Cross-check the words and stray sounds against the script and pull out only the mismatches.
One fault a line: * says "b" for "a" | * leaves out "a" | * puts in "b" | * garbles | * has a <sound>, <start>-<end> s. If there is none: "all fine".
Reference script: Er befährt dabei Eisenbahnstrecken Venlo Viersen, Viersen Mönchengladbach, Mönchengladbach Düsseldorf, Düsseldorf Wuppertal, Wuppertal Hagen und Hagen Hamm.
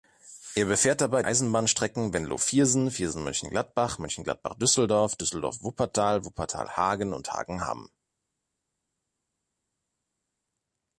all fine